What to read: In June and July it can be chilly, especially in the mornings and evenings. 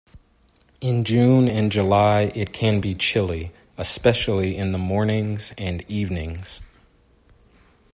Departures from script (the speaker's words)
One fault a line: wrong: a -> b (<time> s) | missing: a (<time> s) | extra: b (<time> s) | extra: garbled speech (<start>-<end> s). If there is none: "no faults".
no faults